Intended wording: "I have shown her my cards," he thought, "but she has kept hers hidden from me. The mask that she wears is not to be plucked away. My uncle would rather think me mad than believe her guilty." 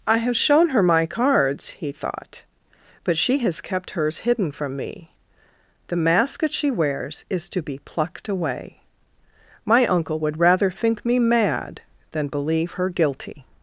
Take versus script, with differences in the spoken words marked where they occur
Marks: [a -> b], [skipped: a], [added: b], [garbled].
"I have shown her my cards," he thought, "but she has kept hers hidden from me. The mask that she wears is [skipped: not] to be plucked away. My uncle would rather think me mad than believe her guilty."